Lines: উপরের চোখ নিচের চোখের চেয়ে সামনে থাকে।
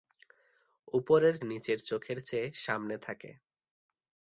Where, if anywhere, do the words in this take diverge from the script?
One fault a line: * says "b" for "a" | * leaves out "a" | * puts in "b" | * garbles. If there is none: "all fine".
* leaves out "চোখ"